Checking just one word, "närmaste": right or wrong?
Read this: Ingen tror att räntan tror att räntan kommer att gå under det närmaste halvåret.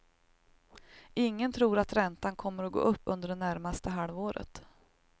right